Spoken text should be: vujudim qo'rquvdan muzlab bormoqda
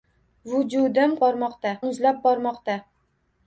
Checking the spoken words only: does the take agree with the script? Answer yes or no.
no